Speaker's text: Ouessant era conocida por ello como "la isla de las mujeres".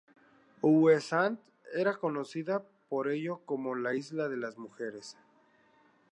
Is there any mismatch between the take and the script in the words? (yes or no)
no